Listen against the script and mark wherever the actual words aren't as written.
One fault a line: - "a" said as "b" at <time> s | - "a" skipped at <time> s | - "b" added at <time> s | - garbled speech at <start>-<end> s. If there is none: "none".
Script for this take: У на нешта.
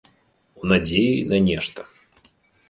- "надзеі" added at 0.7 s